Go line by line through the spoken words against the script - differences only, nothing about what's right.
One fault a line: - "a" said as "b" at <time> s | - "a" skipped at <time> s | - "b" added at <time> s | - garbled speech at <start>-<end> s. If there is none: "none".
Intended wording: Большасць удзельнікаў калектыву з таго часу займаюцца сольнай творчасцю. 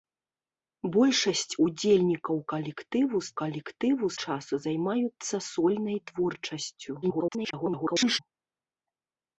- "таго" said as "калектыву" at 3.4 s
- garbled speech at 7.0-8.2 s